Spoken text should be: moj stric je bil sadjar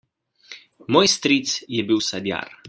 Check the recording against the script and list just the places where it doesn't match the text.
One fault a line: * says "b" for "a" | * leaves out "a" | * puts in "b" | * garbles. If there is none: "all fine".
all fine